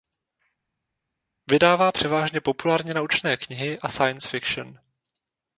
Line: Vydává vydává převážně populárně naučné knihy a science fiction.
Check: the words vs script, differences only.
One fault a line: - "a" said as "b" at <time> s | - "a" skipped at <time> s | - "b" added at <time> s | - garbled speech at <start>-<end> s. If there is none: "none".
- "vydává" skipped at 1.9 s